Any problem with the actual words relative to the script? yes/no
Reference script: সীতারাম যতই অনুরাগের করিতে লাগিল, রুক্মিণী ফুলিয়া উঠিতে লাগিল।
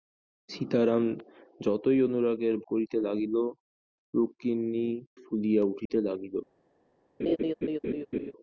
no